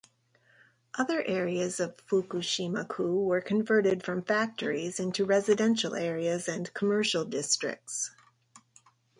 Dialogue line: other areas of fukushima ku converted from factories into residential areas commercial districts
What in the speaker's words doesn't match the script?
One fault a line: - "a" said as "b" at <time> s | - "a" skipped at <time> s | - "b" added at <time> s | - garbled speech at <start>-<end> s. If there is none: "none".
- "were" added at 3.2 s
- "and" added at 6.5 s